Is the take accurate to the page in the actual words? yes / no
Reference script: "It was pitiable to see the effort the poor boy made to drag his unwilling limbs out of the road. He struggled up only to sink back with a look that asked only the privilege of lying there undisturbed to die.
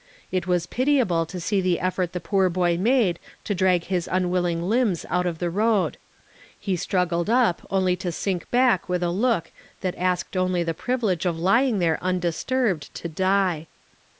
yes